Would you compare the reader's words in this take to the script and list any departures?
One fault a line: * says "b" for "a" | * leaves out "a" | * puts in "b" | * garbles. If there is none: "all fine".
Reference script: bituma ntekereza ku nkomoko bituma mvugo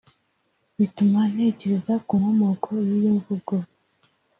* says "y'iyo" for "bituma"